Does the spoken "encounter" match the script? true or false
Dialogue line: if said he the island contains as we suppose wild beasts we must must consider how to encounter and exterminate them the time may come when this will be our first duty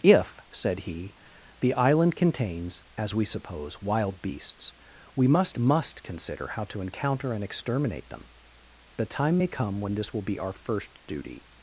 true